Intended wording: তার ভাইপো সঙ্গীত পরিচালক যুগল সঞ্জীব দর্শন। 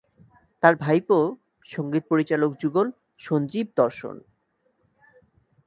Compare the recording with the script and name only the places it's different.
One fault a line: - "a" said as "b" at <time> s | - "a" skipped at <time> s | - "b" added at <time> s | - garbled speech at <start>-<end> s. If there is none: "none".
none